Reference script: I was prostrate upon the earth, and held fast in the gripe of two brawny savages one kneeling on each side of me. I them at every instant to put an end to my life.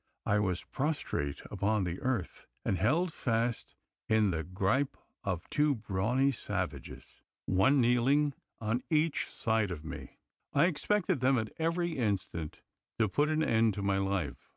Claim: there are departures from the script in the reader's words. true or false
true